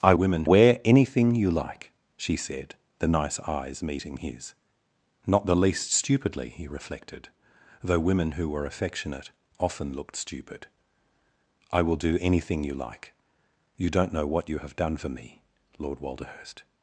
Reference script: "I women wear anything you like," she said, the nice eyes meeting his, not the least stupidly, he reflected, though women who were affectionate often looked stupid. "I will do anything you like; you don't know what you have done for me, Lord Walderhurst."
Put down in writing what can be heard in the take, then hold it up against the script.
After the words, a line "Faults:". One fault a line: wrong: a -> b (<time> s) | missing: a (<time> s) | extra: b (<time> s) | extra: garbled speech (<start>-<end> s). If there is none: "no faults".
"I women wear anything you like," she said, the nice eyes meeting his, not the least stupidly, he reflected, though women who were affectionate often looked stupid. "I will do anything you like; you don't know what you have done for me, Lord Walderhurst."
Faults:
no faults